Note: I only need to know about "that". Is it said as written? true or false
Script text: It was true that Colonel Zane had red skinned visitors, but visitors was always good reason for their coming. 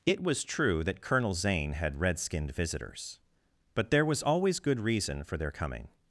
true